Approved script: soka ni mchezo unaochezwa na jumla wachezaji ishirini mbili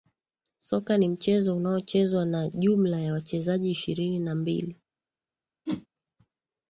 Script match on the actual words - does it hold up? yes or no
no